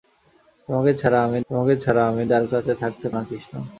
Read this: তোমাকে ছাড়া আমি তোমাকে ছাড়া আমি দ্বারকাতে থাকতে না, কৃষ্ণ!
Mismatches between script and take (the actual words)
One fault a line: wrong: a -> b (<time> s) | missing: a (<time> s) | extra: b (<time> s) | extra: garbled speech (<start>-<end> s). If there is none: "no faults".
no faults